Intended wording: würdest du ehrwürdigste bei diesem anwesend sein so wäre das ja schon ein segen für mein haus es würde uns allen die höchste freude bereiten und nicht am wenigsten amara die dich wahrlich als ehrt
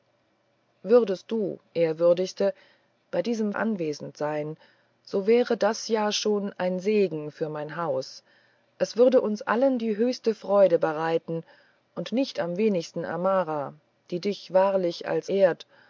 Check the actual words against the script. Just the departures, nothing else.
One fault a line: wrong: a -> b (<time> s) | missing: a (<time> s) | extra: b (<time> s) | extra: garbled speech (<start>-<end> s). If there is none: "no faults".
no faults